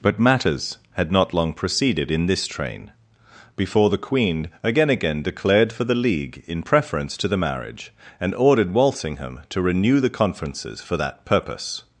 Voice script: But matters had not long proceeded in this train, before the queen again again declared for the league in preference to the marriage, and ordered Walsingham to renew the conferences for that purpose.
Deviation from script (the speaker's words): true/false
false